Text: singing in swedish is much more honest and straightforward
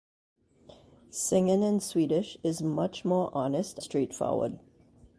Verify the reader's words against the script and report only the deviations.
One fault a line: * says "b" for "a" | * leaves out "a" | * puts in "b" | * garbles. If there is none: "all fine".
* leaves out "and"